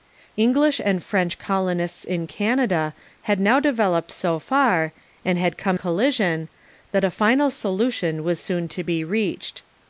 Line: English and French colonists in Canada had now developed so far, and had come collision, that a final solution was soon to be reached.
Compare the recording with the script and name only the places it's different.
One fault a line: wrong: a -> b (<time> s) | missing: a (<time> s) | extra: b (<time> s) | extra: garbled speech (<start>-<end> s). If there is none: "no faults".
no faults